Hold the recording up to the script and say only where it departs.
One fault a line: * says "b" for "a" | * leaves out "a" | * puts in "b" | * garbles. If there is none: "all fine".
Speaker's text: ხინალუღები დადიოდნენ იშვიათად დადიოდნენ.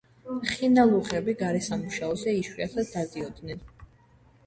* says "გარესამუშაოზე" for "დადიოდნენ"